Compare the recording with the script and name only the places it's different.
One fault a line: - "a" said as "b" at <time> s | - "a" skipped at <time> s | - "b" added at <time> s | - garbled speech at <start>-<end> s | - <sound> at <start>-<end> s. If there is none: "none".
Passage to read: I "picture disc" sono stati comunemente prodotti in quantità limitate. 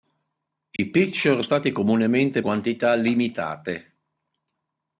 - dropout at 0.8-0.8 s
- "disc sono" skipped at 1.4 s
- "prodotti in" skipped at 2.4 s